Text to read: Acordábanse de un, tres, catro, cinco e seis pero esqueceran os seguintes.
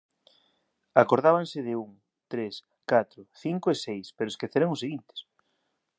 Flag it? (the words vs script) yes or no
no